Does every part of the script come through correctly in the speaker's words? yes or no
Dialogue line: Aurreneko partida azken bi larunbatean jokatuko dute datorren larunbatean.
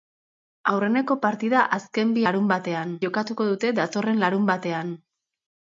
yes